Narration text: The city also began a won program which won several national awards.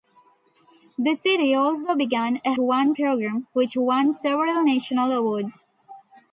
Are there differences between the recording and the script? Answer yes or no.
no